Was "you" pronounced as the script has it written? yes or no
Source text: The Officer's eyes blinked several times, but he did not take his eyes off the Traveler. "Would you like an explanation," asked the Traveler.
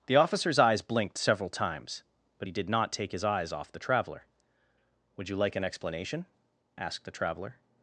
yes